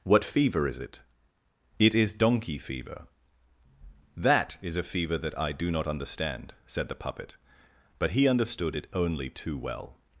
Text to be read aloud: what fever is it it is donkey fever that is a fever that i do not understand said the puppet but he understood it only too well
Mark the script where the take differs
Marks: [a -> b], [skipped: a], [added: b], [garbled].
what fever is it it is donkey fever that is a fever that i do not understand said the puppet but he understood it only too well